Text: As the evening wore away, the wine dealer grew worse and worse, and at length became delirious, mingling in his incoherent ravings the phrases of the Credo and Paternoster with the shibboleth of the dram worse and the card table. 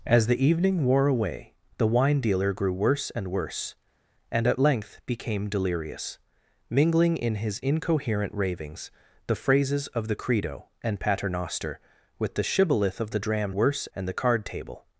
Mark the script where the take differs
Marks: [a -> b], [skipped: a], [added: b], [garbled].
As the evening wore away, the wine dealer grew worse and worse, and at length became delirious, mingling in his incoherent ravings the phrases of the Credo and Paternoster with the shibboleth of the dram worse and the card table.